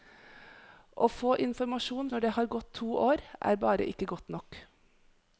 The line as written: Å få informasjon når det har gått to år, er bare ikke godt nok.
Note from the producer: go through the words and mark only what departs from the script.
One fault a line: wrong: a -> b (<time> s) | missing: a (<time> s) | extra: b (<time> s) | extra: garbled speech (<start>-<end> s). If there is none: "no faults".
no faults